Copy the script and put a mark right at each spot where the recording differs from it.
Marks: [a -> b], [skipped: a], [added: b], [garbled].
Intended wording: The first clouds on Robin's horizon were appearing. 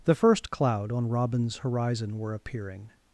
The first [clouds -> cloud] on Robin's horizon were appearing.